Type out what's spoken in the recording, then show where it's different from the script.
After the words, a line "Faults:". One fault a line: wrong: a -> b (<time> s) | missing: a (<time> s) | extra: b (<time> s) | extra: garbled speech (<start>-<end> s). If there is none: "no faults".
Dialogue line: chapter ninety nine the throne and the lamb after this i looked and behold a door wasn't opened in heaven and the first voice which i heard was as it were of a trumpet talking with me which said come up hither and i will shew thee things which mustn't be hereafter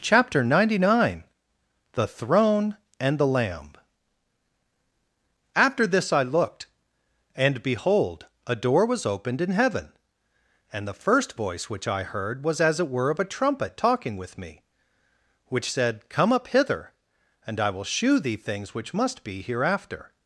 chapter ninety nine the throne and the lamb after this i looked and behold a door was opened in heaven and the first voice which i heard was as it were of a trumpet talking with me which said come up hither and i will shew thee things which must be hereafter
Faults:
wrong: wasn't -> was (8.8 s)
wrong: mustn't -> must (18.9 s)